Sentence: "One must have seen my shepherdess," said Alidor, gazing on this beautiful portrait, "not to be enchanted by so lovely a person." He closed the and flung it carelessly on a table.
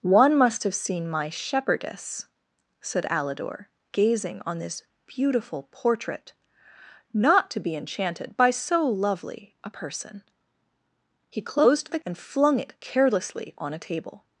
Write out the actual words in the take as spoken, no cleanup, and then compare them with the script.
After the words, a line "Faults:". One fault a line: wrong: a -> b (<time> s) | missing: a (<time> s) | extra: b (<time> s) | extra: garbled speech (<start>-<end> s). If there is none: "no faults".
"One must have seen my shepherdess," said Alidor, gazing on this beautiful portrait, "not to be enchanted by so lovely a person." He closed the and flung it carelessly on a table.
Faults:
no faults